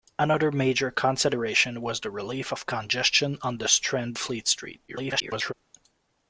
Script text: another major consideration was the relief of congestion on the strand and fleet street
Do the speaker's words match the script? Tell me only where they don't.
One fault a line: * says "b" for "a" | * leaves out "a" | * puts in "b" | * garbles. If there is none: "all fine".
* leaves out "and"
* garbles